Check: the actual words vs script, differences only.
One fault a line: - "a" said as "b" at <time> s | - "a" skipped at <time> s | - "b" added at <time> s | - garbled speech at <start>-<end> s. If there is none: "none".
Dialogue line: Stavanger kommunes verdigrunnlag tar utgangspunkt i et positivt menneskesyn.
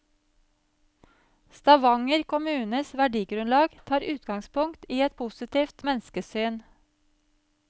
none